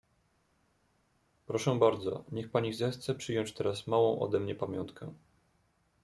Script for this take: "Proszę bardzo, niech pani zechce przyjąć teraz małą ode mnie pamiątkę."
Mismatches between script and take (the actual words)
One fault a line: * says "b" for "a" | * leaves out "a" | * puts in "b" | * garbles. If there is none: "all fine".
all fine